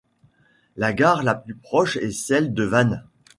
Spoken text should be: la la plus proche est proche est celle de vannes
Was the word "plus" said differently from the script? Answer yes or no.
no